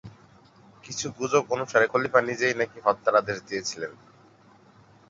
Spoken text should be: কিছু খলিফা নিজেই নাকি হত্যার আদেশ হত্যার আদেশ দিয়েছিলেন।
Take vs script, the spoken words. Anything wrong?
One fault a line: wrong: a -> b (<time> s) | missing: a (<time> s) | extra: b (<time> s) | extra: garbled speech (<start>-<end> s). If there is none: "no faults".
extra: গুজব অনুসারে (1.2 s)
missing: হত্যার আদেশ (3.4 s)